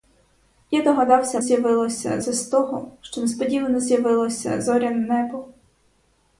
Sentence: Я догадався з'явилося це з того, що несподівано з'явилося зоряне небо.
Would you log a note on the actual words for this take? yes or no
no